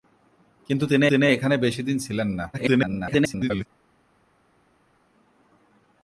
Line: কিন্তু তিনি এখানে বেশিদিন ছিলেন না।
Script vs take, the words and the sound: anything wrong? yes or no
yes